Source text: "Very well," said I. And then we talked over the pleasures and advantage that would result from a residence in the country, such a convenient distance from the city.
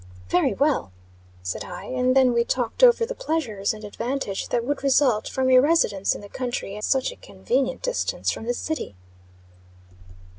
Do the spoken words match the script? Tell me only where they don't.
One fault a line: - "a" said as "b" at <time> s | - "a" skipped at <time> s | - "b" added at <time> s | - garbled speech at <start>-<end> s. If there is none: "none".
none